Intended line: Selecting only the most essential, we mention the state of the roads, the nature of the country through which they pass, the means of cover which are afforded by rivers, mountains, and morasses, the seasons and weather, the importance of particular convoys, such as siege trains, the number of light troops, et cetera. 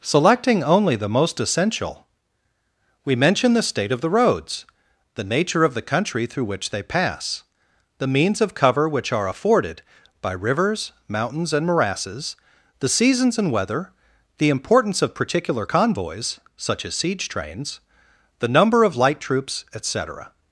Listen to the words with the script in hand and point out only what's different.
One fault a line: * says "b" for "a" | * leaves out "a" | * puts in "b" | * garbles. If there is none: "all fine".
all fine